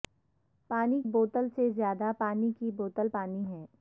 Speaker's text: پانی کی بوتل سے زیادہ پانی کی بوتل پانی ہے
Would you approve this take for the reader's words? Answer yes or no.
no